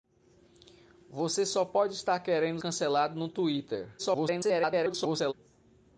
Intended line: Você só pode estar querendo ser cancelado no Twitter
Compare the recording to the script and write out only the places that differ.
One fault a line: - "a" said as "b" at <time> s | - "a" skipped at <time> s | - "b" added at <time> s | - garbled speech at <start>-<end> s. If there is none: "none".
- "ser" skipped at 2.6 s
- garbled speech at 4.0-5.3 s